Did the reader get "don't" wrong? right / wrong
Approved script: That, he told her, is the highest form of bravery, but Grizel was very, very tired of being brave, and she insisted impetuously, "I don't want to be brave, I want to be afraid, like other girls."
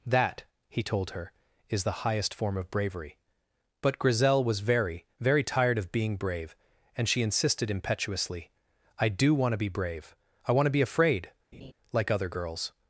wrong